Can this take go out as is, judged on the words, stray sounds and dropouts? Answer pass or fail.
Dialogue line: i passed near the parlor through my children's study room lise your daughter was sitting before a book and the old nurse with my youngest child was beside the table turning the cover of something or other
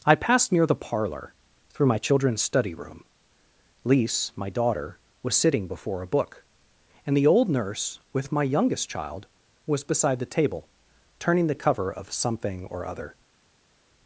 fail